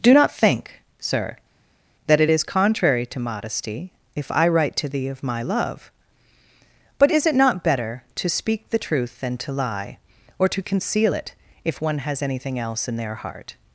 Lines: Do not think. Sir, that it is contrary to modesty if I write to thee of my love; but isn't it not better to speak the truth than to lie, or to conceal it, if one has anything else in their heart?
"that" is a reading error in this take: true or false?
false